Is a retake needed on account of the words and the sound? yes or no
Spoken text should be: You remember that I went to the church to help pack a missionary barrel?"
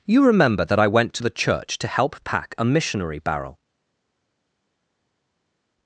no